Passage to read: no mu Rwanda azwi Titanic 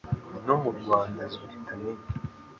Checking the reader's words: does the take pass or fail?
pass